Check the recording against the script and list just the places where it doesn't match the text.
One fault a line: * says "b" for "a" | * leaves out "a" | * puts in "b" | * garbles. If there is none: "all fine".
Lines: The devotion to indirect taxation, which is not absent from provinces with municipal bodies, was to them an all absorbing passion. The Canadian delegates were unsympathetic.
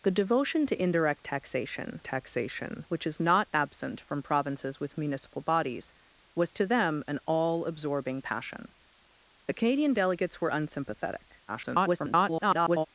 * puts in "taxation"
* garbles